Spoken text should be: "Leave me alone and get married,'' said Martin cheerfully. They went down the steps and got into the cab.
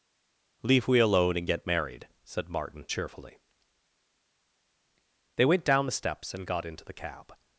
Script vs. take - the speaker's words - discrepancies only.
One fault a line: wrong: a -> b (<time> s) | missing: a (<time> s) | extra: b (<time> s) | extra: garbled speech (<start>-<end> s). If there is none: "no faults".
wrong: me -> we (0.9 s)